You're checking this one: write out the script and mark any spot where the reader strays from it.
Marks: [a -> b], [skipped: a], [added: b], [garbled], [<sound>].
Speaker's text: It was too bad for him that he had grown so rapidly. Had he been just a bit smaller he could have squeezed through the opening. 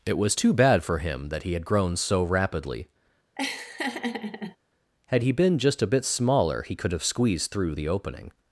It was too bad for him that he had grown so rapidly. [laugh] Had he been just a bit smaller he could have squeezed through the opening.